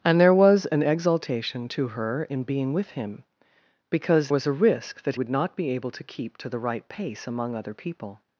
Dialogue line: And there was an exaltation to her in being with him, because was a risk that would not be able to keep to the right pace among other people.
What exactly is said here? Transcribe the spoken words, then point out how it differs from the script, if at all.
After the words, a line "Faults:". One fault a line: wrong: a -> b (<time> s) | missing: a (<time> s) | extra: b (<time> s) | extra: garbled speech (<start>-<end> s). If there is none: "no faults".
And there was an exaltation to her in being with him, because was a risk that would not be able to keep to the right pace among other people.
Faults:
no faults